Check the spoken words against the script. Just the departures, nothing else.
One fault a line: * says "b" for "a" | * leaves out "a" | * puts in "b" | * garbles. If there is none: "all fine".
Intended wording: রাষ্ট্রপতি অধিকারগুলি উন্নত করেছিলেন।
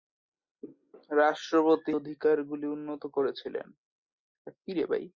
all fine